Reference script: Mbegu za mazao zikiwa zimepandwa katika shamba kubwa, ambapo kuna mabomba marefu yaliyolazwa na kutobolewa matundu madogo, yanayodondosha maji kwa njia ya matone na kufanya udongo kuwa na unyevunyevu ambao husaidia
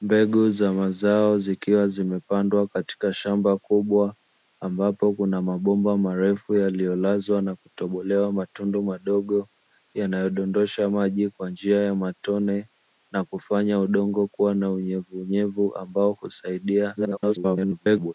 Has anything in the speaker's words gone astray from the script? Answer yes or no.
yes